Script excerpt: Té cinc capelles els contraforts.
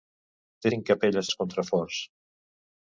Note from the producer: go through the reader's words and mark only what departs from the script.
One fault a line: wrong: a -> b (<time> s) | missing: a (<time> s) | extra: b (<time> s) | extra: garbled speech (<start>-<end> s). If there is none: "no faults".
no faults